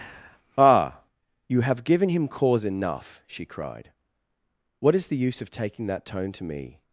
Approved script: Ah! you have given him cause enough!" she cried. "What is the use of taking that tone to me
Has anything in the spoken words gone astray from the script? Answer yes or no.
no